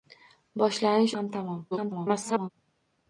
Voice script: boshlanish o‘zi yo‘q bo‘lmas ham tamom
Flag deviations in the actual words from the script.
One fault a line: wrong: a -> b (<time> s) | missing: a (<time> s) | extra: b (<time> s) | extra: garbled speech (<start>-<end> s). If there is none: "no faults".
missing: o‘zi yo‘q bo‘lmas (1.1 s)
extra: garbled speech (1.7-2.5 s)